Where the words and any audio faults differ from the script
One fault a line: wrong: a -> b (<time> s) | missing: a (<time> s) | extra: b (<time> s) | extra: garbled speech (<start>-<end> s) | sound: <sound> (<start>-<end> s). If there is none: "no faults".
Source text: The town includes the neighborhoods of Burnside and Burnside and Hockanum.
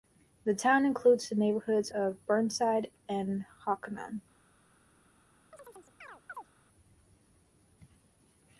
missing: Burnside and (3.4 s)
sound: chirp (5.5-6.5 s)